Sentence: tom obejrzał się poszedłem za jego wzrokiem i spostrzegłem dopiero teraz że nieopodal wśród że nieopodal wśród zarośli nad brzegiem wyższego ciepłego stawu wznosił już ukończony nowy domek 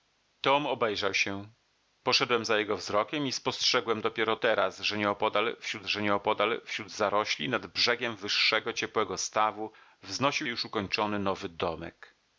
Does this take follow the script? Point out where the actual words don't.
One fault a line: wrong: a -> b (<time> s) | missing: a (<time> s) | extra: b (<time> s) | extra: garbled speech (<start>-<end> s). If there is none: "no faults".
no faults